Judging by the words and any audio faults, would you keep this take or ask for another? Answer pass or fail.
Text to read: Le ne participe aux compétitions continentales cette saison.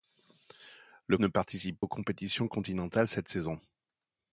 pass